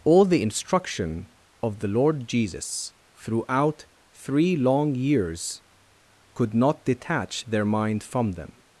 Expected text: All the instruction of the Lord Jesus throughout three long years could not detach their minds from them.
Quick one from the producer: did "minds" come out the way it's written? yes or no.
no